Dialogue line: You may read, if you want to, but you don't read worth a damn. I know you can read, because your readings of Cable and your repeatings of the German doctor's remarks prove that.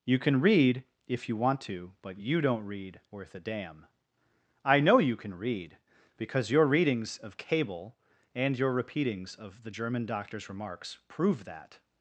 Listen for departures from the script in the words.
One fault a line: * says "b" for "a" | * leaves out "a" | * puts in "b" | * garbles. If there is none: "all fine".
* says "can" for "may"